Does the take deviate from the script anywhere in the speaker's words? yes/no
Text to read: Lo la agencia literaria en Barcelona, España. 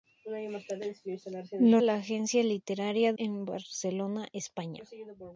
no